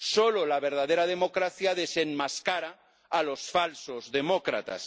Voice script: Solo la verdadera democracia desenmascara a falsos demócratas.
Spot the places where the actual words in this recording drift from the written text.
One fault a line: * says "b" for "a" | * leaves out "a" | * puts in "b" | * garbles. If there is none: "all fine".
* puts in "los"